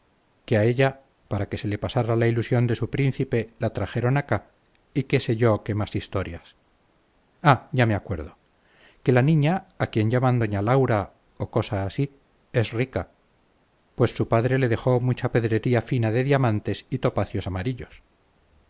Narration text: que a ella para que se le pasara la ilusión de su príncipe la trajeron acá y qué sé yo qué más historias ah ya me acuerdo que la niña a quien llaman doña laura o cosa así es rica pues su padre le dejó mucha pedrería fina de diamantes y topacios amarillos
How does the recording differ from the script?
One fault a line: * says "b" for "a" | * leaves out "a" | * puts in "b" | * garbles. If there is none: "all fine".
all fine